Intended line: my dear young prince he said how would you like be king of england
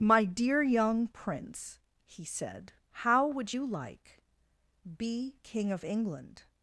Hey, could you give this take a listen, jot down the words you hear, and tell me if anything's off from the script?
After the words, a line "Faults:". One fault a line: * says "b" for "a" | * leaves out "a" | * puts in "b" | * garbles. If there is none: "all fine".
my dear young prince he said how would you like be king of england
Faults:
all fine